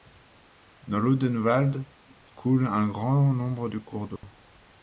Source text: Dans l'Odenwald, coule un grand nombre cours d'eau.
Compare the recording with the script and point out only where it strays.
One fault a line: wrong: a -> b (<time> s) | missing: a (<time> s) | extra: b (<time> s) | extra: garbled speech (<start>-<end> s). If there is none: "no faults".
extra: de (3.7 s)